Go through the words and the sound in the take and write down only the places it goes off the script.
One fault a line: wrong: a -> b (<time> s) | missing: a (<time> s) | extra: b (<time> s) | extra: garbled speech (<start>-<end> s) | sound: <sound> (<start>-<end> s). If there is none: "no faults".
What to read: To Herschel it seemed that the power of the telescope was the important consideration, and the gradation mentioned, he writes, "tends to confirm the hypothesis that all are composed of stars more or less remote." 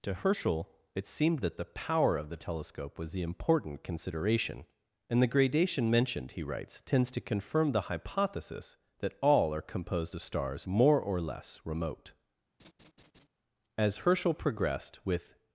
sound: laugh (12.6-13.3 s)
extra: As Herschel progressed with (13.8 s)